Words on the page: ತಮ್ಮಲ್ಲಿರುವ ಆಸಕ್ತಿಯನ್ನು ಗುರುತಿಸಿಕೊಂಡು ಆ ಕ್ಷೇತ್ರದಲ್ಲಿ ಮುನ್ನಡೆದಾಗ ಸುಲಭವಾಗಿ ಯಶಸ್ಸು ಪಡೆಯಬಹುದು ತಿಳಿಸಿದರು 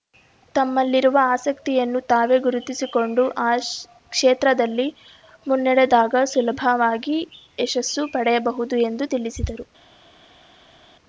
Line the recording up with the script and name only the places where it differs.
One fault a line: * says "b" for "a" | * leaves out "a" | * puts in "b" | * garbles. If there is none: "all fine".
* puts in "ತಾವೇ"
* puts in "ಎಂದು"